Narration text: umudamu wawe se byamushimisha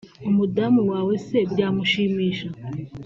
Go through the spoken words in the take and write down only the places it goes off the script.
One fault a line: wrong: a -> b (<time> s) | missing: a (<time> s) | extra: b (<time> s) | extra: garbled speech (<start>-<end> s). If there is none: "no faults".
no faults